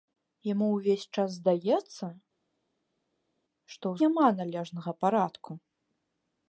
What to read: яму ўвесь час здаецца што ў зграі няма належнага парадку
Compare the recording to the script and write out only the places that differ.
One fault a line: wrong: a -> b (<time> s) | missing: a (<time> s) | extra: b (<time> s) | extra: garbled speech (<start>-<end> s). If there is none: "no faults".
missing: зграі (4.0 s)